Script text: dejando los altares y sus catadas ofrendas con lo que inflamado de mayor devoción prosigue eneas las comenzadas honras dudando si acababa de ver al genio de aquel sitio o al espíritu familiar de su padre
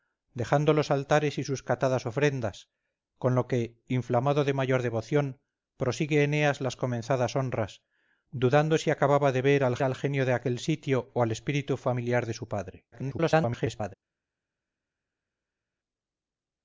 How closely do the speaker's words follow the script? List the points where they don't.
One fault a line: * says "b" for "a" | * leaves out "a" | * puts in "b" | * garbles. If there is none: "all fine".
* puts in "al"
* garbles